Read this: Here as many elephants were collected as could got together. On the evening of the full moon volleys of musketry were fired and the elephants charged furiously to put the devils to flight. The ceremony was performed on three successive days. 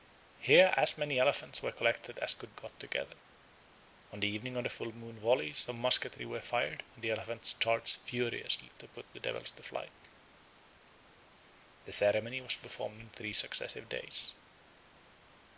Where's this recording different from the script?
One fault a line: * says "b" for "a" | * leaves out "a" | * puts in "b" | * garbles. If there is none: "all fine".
all fine